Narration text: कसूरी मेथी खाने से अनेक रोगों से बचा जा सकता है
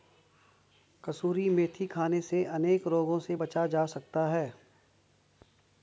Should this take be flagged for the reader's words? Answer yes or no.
no